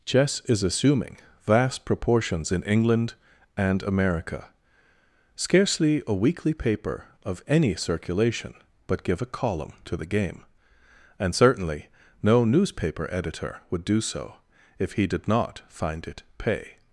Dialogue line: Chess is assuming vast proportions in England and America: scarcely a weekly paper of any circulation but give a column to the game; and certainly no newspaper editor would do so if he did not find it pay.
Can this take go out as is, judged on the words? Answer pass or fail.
pass